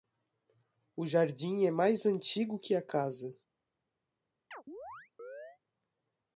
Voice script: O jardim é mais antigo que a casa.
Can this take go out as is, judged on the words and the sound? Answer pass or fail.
fail